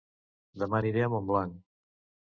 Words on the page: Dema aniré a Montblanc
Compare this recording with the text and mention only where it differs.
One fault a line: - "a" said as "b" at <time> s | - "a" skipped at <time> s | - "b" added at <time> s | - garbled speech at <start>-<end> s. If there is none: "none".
none